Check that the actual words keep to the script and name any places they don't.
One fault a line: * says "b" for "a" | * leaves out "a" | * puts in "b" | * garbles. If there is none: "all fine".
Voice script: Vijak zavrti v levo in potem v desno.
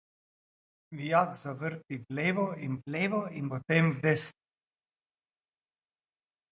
* puts in "v levo in"